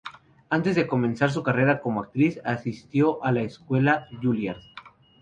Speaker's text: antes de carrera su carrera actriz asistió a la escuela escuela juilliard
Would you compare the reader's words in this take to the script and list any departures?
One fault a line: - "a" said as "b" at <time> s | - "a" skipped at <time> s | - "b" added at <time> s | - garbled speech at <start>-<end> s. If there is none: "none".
- "carrera" said as "comenzar" at 0.9 s
- "como" added at 1.8 s
- "escuela" skipped at 4.1 s